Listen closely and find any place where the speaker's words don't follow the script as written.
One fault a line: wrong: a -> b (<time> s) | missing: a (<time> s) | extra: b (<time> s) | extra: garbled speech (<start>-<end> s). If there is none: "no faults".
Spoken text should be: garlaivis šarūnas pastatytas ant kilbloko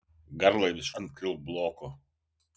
missing: šarūnas pastatytas (0.9 s)